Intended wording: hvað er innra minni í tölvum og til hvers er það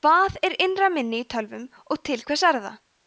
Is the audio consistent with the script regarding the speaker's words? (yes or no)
yes